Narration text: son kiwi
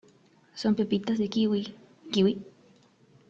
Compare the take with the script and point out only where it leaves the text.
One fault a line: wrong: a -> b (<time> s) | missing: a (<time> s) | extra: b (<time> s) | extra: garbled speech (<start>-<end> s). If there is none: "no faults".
extra: pepitas de kiwi (0.7 s)